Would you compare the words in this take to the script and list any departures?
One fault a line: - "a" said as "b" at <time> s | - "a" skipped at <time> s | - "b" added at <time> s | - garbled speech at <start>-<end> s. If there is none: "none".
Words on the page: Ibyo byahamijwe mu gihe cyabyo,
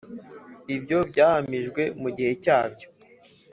none